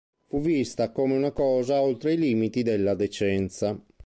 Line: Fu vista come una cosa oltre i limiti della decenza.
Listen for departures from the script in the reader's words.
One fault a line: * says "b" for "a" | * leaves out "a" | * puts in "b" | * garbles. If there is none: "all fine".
all fine